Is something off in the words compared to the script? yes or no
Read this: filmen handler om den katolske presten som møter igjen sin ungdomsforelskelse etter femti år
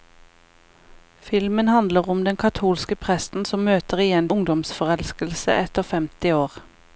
yes